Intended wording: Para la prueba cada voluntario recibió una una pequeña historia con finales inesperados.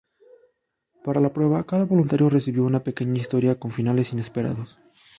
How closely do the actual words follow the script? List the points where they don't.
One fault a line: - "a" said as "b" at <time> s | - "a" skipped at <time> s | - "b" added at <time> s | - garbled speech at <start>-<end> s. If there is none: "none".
- "una" skipped at 2.8 s